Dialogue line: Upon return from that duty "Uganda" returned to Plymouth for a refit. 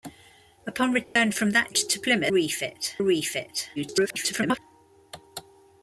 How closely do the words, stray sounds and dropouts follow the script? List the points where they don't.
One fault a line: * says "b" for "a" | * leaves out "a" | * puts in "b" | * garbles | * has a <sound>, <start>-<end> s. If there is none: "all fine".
* has a dropout, 1.0-1.2 s
* leaves out "duty Uganda returned"
* says "refit" for "for"
* garbles